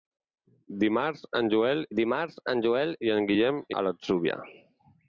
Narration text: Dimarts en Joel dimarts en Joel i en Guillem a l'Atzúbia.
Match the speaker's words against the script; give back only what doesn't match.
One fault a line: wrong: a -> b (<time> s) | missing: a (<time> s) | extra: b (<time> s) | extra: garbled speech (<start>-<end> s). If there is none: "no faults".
no faults